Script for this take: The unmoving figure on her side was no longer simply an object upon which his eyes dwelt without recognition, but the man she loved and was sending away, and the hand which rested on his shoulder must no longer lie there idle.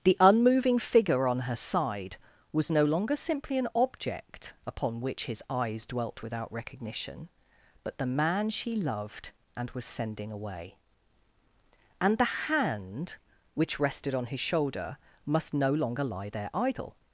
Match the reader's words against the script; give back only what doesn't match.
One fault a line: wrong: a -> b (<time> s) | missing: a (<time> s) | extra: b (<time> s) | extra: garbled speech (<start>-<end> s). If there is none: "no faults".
no faults